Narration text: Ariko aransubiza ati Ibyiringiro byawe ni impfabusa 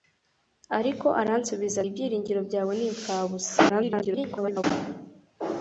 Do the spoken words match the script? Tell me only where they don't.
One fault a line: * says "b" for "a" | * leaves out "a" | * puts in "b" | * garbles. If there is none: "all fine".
* leaves out "ati"
* garbles